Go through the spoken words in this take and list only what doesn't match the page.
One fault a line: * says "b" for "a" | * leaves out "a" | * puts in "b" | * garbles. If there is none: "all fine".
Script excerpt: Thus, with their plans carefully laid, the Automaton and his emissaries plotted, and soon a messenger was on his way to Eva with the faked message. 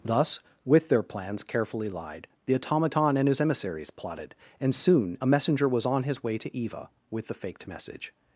* says "lied" for "laid"